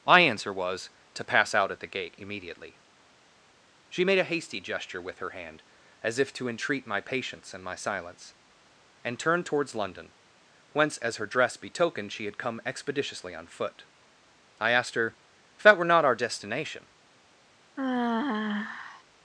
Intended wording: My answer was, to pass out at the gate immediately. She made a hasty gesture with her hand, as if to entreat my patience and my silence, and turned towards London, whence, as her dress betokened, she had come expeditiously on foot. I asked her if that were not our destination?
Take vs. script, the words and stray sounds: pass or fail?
fail